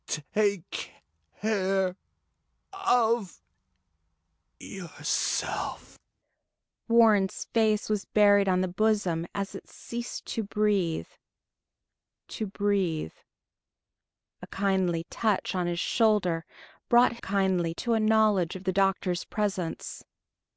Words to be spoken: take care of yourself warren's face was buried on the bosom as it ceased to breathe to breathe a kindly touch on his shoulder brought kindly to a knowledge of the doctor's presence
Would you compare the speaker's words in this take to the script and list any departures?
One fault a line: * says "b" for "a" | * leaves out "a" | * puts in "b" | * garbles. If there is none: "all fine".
all fine